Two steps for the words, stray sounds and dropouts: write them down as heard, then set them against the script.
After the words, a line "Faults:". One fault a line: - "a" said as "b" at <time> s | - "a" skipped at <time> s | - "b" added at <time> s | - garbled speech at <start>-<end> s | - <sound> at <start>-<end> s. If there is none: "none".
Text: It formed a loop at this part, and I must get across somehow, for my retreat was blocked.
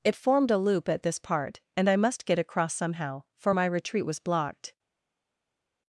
It formed a loop at this part, and I must get across somehow, for my retreat was blocked.
Faults:
none